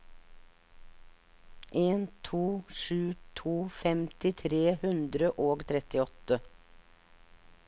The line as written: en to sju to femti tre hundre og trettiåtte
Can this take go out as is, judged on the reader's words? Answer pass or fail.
pass